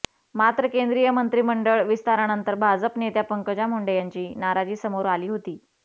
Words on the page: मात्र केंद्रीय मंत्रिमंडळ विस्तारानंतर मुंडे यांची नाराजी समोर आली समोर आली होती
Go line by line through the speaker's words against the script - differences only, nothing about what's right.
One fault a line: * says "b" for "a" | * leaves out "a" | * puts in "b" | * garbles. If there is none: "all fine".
* puts in "भाजप नेत्या पंकजा"
* leaves out "समोर आली"